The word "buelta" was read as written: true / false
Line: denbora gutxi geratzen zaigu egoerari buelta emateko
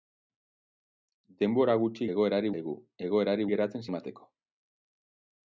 false